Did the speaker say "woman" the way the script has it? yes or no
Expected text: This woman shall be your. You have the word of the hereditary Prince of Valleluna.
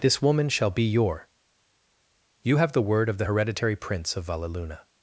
yes